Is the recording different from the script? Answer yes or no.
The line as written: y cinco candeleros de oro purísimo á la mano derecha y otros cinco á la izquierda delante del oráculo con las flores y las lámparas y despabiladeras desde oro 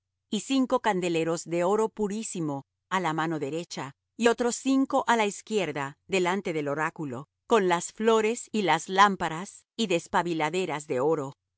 yes